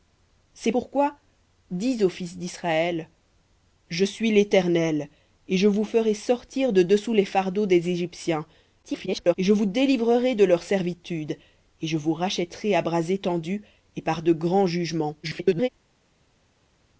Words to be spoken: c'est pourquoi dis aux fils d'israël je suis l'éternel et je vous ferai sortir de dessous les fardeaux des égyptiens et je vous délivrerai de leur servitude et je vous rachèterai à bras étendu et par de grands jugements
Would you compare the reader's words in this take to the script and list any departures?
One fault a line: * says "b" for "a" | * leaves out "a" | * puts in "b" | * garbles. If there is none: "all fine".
* garbles
* garbles